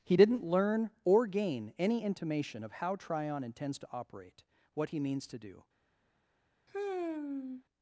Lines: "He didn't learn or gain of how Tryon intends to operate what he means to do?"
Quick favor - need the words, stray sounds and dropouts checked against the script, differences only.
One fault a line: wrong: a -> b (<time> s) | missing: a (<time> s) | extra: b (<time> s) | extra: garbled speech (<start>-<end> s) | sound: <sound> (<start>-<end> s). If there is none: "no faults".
extra: any intimation (1.8 s)
sound: sigh (6.7-7.6 s)